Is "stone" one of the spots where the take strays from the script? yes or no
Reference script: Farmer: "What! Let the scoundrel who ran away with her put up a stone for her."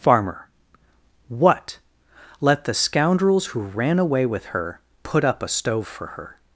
yes